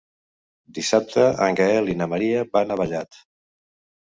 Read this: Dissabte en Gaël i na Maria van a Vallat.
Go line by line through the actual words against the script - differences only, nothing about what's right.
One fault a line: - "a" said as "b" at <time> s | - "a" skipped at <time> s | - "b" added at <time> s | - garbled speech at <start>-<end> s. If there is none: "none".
none